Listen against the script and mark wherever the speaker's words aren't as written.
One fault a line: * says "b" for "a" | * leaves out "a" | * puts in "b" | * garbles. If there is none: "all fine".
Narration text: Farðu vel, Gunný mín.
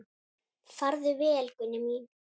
all fine